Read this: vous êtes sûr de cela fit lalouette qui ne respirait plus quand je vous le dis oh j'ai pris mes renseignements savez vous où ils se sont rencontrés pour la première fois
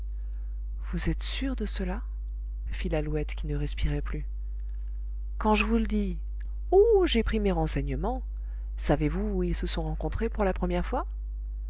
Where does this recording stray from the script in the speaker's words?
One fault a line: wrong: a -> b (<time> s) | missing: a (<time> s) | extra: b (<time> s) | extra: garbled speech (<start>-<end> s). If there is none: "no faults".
no faults